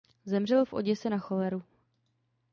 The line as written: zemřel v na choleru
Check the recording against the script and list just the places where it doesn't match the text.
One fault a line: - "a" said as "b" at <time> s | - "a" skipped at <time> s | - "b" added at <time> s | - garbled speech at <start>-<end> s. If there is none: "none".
- "oděse" added at 0.7 s